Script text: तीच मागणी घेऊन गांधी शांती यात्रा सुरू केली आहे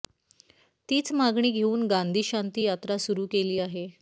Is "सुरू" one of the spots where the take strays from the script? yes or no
no